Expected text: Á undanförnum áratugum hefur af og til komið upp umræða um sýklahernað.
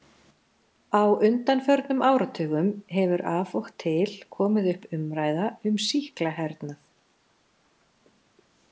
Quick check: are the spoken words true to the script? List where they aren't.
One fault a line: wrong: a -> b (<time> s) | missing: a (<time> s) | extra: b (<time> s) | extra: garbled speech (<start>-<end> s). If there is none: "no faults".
no faults